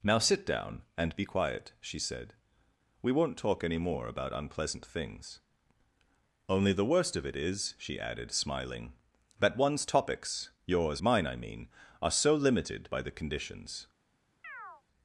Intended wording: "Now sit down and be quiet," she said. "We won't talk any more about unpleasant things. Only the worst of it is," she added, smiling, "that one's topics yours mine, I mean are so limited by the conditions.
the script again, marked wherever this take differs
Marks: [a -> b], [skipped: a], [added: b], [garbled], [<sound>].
"Now sit down and be quiet," she said. "We won't talk any more about unpleasant things. Only the worst of it is," she added, smiling, "that one's topics yours mine, I mean are so limited by the conditions. [chirp]